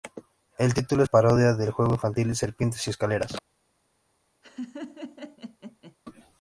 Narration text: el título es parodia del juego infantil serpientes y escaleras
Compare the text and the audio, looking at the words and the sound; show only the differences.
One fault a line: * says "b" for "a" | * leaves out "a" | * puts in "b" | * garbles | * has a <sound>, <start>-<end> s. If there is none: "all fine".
* has a laugh, 4.4-6.0 s